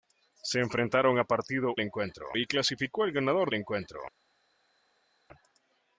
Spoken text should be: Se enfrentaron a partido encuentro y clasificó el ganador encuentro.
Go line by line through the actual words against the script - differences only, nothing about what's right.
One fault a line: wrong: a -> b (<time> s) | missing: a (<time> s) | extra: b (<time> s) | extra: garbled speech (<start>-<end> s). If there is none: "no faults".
no faults